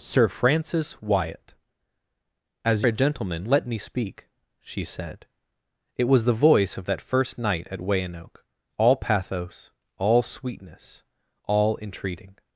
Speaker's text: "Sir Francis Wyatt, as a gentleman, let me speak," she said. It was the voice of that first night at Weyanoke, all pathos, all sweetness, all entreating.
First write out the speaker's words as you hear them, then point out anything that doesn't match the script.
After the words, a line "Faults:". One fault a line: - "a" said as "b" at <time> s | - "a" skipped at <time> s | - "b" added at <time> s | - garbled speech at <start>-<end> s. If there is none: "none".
"Sir Francis Wyatt, as a gentleman, let me speak," she said. It was the voice of that first night at Weyanoke, all pathos, all sweetness, all entreating.
Faults:
none